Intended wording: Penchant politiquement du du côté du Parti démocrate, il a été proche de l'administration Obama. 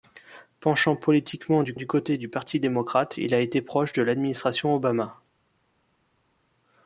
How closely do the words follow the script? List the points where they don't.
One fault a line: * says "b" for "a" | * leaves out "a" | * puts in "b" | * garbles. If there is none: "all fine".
all fine